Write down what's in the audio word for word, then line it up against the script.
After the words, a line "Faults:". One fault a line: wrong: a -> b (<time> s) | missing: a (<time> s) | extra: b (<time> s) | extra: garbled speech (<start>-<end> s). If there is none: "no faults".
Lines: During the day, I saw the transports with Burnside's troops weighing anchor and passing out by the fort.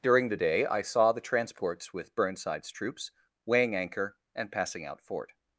During the day, I saw the transports with Burnside's troops weighing anchor and passing out fort.
Faults:
missing: by the (5.0 s)